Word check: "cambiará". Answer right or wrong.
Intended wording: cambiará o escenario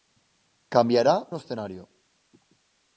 right